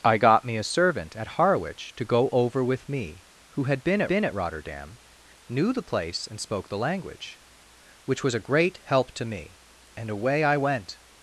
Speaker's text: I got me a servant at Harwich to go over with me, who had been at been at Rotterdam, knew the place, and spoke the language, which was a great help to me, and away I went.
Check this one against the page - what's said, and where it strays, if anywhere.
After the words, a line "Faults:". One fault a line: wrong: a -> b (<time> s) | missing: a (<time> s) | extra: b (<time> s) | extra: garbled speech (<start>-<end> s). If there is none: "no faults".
I got me a servant at Harwich to go over with me, who had been at been at Rotterdam, knew the place, and spoke the language, which was a great help to me, and away I went.
Faults:
no faults